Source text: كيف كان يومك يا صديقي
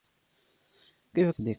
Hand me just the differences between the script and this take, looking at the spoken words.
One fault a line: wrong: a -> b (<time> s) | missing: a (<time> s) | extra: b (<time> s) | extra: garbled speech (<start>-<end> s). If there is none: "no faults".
missing: كان يومك يا (1.3 s)